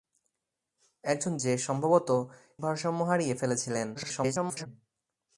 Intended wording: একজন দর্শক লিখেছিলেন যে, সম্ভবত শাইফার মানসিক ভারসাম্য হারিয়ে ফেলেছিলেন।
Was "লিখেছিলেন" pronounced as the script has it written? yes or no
no